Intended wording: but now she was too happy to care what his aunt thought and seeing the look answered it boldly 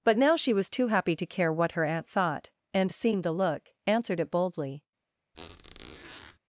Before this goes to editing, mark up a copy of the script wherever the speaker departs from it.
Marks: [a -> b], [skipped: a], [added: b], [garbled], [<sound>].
but now she was too happy to care what [his -> her] aunt thought and seeing the look answered it boldly [squeak]